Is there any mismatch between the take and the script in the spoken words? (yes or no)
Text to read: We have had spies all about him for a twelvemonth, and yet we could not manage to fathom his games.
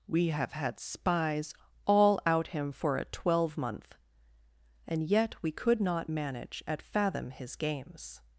yes